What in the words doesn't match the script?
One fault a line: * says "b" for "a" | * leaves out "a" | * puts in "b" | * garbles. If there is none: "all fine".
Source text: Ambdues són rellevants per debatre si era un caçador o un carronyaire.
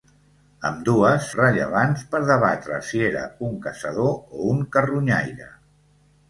* leaves out "són"